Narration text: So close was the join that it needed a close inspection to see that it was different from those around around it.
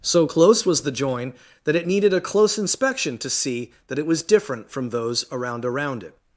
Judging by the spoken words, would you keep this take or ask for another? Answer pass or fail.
pass